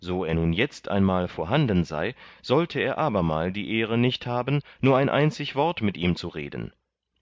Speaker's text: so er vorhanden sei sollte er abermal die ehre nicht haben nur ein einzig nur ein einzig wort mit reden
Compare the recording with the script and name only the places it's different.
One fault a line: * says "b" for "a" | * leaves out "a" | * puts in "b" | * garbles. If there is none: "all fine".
* puts in "nun jetzt einmal"
* says "wort mit ihm zu" for "nur ein einzig wort mit"